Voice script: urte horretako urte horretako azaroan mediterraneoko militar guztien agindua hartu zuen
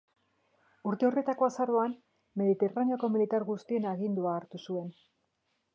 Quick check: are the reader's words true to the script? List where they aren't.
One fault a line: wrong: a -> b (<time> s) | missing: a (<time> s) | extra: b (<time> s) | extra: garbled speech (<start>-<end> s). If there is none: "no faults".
missing: urte horretako (1.5 s)